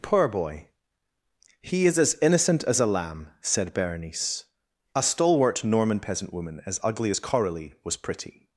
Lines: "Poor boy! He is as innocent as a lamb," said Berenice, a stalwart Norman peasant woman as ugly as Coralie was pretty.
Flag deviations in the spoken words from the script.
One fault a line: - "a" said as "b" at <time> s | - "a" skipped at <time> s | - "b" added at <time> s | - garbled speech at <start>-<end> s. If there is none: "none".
none